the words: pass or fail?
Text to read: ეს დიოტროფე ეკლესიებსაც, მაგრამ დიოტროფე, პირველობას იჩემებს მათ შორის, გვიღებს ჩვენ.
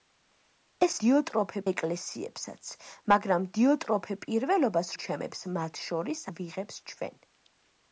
pass